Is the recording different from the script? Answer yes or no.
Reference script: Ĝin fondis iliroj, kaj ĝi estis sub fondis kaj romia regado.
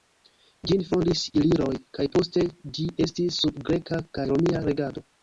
yes